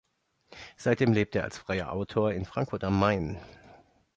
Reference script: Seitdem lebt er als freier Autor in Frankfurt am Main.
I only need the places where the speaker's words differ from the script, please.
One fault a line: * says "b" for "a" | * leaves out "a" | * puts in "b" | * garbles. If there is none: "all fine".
all fine